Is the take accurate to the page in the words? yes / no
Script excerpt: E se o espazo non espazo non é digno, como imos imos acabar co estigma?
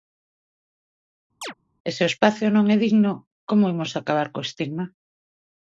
no